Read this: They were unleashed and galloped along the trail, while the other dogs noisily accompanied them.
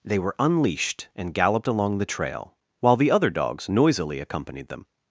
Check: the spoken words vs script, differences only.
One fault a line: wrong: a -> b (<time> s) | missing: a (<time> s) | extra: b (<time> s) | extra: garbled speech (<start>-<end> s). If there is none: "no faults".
no faults